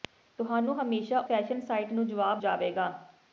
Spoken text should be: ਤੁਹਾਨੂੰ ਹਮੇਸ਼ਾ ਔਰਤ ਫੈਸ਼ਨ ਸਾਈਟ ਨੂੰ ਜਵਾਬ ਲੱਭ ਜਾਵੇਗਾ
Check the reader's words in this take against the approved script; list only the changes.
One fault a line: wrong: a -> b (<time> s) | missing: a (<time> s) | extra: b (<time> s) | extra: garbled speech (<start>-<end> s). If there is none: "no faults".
missing: ਔਰਤ (1.2 s)
missing: ਲੱਭ (2.4 s)